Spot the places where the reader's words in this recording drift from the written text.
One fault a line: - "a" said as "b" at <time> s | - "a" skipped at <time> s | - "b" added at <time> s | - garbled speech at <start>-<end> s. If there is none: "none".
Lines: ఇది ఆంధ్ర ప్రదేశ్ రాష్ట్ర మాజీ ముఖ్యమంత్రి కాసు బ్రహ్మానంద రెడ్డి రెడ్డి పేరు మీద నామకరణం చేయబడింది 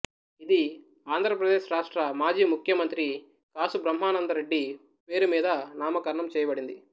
- "రెడ్డి" skipped at 4.6 s